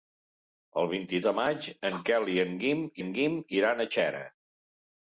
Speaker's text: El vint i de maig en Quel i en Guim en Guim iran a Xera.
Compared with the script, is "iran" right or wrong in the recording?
right